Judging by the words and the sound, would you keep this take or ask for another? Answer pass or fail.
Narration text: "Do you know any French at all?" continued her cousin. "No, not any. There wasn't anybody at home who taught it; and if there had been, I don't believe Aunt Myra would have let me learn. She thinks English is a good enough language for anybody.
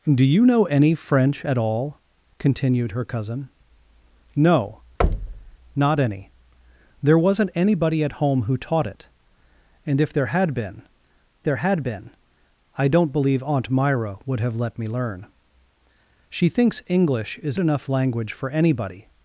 fail